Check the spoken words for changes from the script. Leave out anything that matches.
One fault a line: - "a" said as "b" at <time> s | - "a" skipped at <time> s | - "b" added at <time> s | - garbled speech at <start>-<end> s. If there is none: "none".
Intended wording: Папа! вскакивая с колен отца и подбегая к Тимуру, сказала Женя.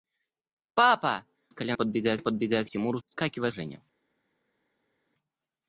- "вскакивая" skipped at 1.2 s
- "отца" said as "подбегая" at 1.7 s
- "сказала" said as "вскакивая" at 3.1 s